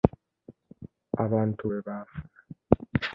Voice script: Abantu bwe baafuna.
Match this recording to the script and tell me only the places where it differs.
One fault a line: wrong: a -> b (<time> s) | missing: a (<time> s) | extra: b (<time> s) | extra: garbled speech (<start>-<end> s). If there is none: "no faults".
no faults